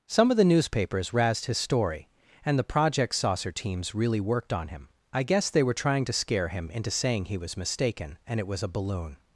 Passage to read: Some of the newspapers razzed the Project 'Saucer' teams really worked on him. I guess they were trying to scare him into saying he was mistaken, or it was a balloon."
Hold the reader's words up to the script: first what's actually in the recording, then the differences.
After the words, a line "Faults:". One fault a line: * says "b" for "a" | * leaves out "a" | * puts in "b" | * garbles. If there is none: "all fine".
Some of the newspapers razzed his story. And the Project 'Saucer' teams really worked on him. I guess they were trying to scare him into saying he was mistaken, and it was a balloon."
Faults:
* puts in "his story And"
* says "and" for "or"